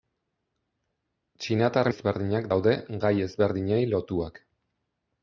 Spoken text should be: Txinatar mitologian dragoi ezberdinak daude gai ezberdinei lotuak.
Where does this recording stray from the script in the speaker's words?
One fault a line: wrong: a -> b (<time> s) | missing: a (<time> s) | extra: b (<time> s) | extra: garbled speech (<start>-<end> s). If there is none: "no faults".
missing: mitologian dragoi (1.9 s)